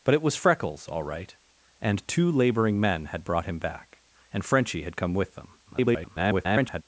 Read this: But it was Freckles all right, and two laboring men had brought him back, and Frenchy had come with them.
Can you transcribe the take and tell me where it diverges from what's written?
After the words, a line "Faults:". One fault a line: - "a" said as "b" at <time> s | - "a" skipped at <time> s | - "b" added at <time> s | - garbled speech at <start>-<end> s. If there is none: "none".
But it was Freckles all right, and two laboring men had brought him back, and Frenchy had come with them. [garbled]
Faults:
- garbled speech at 5.7-6.8 s